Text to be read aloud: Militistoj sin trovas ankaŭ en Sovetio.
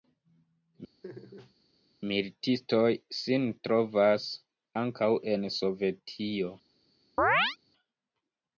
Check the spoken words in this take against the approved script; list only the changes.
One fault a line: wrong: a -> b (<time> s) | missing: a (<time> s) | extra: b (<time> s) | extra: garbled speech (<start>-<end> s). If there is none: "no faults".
no faults